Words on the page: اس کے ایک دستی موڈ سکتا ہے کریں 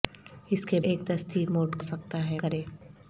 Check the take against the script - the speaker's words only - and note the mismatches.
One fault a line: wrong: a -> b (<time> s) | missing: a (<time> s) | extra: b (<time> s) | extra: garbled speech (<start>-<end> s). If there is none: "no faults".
no faults